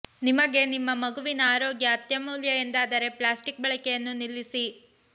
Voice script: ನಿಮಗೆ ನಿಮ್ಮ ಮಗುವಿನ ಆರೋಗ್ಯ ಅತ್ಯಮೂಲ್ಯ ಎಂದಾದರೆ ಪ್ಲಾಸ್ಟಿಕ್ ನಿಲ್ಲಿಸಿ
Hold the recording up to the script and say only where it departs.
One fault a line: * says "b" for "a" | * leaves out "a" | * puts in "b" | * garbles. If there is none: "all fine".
* puts in "ಬಳಕೆಯನ್ನು"